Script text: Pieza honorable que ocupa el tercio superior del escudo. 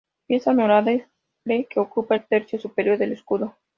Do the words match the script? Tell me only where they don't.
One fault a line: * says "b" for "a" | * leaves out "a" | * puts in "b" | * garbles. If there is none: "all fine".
all fine